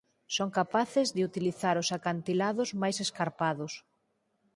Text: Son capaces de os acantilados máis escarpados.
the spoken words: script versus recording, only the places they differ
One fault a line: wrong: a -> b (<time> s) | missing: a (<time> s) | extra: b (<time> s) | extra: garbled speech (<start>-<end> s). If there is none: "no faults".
extra: utilizar (1.3 s)